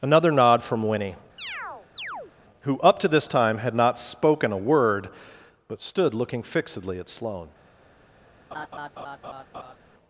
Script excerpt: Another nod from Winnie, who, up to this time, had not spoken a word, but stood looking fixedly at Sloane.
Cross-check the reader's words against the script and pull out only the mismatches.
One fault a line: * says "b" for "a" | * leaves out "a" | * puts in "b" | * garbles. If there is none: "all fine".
all fine